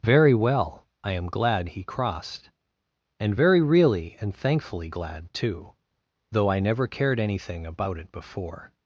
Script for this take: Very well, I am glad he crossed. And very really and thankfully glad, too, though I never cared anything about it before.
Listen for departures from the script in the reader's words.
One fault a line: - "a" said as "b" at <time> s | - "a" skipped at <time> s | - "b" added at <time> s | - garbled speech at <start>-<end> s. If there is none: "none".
none